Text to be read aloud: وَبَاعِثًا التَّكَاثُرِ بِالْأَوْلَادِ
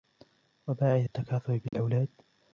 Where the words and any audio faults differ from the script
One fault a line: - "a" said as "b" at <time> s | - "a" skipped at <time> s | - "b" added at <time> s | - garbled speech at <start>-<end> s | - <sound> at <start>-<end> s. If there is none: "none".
- dropout at 1.7-1.7 s